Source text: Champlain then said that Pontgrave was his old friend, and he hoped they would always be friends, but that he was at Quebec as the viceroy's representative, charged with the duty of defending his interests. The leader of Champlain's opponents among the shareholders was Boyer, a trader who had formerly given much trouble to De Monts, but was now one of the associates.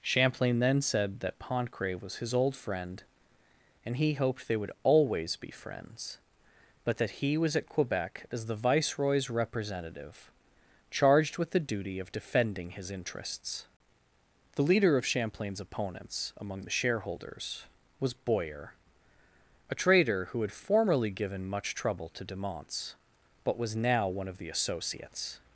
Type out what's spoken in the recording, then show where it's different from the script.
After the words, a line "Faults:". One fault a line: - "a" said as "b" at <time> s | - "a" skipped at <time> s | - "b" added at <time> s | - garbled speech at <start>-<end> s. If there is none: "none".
Champlain then said that Pontgrave was his old friend, and he hoped they would always be friends, but that he was at Quebec as the viceroy's representative, charged with the duty of defending his interests. The leader of Champlain's opponents among the shareholders was Boyer, a trader who had formerly given much trouble to De Monts, but was now one of the associates.
Faults:
none